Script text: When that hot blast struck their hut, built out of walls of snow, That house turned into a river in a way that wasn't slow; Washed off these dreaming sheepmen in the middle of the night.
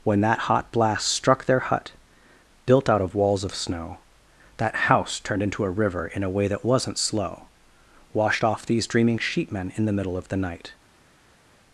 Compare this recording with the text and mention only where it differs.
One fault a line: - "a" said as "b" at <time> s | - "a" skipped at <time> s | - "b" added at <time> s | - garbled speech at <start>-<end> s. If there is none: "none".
none